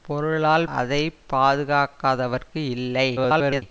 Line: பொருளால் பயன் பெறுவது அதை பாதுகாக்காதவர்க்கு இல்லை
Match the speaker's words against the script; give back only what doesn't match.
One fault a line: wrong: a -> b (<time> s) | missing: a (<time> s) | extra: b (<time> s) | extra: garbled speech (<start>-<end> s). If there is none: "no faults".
missing: பயன் பெறுவது (0.7 s)
extra: garbled speech (3.2-3.6 s)